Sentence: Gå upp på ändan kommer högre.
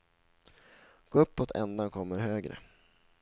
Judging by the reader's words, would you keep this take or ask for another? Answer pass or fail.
pass